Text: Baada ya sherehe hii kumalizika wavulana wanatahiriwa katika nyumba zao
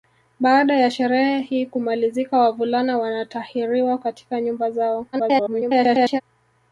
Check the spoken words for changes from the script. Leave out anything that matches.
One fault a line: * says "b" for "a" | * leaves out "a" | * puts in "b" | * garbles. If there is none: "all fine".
* garbles